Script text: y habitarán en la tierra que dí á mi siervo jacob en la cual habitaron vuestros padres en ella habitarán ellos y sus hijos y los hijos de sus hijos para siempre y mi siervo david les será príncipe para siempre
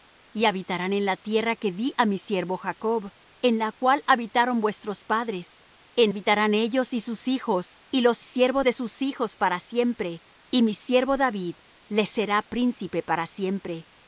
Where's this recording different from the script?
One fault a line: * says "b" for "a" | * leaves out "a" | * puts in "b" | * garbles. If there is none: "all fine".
* leaves out "ella"
* says "siervo" for "hijos"